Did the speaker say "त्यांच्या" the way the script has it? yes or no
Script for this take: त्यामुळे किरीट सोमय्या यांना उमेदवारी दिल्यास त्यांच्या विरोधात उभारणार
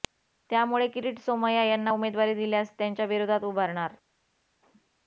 yes